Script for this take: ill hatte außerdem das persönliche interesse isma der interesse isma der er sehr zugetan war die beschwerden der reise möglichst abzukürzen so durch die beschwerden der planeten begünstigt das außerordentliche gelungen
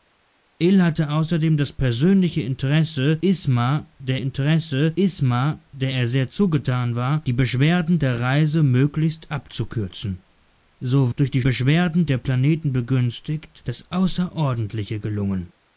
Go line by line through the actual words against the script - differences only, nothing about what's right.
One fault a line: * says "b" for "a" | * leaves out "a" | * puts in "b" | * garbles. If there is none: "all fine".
all fine